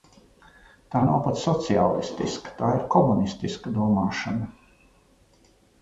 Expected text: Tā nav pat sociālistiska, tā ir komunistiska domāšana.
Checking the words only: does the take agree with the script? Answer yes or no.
yes